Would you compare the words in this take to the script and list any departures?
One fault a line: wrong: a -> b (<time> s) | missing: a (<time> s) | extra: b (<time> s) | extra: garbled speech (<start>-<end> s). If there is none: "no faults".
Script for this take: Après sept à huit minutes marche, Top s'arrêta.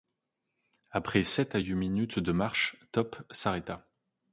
extra: de (2.2 s)